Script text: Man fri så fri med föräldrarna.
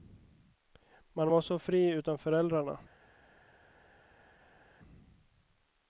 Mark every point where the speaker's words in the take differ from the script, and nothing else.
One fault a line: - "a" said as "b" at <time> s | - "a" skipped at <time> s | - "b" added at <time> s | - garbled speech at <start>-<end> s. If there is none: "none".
- "fri" said as "var" at 1.3 s
- "med" said as "utan" at 1.9 s